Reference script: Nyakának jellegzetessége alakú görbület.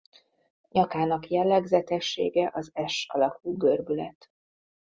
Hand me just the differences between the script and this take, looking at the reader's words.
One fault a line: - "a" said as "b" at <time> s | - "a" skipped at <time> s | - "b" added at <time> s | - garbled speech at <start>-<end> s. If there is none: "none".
- "az S" added at 2.5 s